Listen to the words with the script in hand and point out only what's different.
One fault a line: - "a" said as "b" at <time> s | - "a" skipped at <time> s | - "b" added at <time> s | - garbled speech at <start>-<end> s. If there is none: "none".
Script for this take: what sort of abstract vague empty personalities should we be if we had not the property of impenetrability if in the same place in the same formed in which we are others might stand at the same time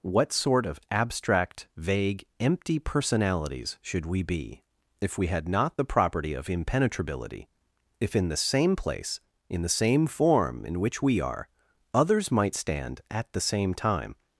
- "formed" said as "form" at 10.1 s